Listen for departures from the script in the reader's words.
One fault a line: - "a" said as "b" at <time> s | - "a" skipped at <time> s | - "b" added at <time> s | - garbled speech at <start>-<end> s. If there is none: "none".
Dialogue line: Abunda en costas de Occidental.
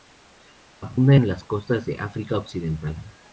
- "las" added at 1.3 s
- "África" added at 2.0 s